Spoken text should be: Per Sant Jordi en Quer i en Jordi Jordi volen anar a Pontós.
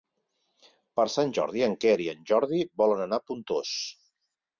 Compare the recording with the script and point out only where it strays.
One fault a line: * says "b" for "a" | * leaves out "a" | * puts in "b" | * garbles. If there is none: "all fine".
* leaves out "Jordi"